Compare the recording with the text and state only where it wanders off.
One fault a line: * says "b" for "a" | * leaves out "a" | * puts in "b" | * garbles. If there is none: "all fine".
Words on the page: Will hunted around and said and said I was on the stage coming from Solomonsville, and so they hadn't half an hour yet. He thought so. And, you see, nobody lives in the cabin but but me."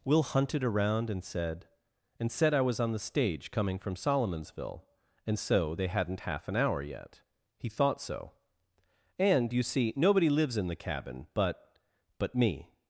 all fine